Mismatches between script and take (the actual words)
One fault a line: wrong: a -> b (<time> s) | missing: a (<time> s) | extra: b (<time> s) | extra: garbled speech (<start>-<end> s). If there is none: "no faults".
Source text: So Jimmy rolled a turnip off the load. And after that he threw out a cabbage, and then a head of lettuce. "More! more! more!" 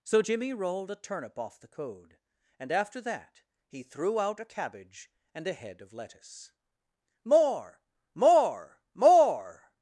wrong: load -> code (1.7 s)
missing: then (5.5 s)